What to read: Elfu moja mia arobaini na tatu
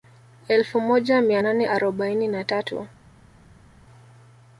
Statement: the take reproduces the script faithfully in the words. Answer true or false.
false